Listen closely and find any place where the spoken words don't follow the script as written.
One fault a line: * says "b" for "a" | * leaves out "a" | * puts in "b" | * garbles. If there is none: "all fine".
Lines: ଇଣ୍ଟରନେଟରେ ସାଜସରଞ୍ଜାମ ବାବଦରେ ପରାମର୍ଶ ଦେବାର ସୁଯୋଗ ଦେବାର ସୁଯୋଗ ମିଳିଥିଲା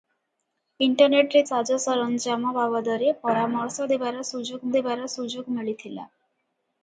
all fine